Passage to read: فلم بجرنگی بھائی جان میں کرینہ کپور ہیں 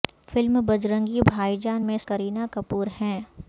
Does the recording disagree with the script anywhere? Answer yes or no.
no